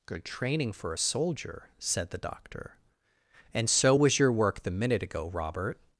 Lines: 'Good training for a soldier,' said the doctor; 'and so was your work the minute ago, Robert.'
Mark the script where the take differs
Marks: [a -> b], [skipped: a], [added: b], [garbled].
'Good training for a soldier,' said the doctor; 'and so was your work the minute ago, Robert.'